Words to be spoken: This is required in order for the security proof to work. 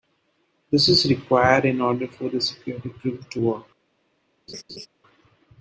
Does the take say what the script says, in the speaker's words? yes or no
yes